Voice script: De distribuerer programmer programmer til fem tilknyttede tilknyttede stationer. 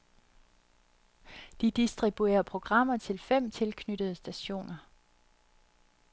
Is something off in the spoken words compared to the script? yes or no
yes